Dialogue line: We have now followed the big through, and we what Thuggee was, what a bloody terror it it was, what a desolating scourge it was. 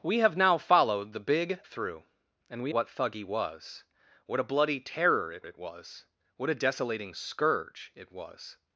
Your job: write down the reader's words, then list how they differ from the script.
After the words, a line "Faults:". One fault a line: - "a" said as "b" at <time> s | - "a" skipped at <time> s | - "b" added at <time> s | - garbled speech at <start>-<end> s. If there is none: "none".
We have now followed the big through, and we what Thuggee was, what a bloody terror it it was, what a desolating scourge it was.
Faults:
none